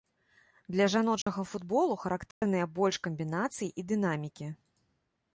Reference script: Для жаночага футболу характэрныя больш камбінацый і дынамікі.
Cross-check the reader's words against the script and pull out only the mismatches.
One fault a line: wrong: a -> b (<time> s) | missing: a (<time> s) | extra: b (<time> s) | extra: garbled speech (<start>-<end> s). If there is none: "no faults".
no faults